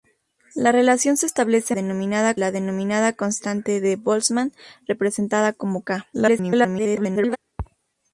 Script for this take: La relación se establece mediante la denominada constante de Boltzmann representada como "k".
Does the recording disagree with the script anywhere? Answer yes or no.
yes